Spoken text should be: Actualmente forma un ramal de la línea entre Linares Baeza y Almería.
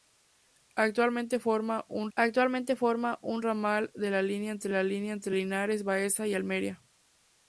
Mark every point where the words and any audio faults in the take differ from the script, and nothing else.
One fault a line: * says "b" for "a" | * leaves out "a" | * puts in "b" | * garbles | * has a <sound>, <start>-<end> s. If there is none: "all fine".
* puts in "actualmente forma un"
* puts in "la línea entre"